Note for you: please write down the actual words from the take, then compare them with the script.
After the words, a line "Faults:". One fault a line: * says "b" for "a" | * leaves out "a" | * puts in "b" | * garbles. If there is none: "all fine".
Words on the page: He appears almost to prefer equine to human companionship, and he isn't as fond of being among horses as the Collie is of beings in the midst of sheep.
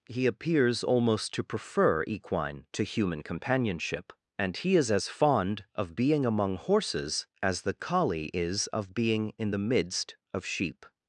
He appears almost to prefer equine to human companionship, and he is as fond of being among horses as the Collie is of being in the midst of sheep.
Faults:
* says "is" for "isn't"
* says "being" for "beings"